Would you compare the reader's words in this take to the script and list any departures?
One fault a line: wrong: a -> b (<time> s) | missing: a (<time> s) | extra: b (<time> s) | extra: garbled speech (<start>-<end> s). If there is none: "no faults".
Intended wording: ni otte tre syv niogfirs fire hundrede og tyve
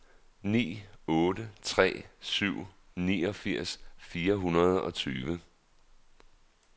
no faults